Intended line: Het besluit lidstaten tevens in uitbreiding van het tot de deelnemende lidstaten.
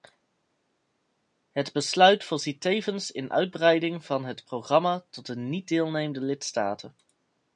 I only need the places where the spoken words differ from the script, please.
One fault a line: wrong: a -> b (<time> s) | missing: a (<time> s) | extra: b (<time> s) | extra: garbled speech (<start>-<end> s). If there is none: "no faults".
wrong: lidstaten -> voorziet (2.2 s)
extra: programma (4.4 s)
extra: niet (5.4 s)